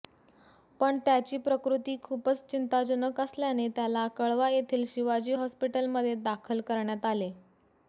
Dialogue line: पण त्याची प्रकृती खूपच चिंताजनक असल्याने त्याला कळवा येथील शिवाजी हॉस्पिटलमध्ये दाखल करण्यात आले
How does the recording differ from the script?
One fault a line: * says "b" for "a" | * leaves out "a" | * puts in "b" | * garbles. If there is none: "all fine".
all fine